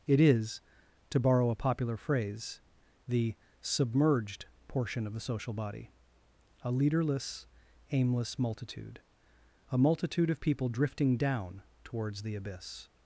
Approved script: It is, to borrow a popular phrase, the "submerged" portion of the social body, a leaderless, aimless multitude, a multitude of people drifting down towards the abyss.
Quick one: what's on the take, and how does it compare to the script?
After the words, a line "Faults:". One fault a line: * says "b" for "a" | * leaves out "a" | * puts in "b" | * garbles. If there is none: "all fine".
It is, to borrow a popular phrase, the "submerged" portion of the social body, a leaderless, aimless multitude, a multitude of people drifting down towards the abyss.
Faults:
all fine